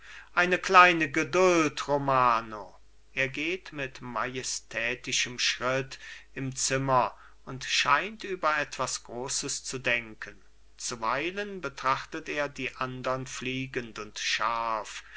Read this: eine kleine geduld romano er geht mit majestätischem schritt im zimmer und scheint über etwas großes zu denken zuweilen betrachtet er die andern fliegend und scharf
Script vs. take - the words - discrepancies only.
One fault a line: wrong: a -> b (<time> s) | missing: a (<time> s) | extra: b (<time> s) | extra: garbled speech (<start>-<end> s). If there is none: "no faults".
no faults